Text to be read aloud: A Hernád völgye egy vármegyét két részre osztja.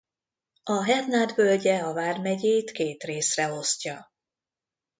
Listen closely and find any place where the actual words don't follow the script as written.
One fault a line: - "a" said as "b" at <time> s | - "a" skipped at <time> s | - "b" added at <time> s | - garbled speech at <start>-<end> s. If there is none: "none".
- "egy" said as "a" at 1.8 s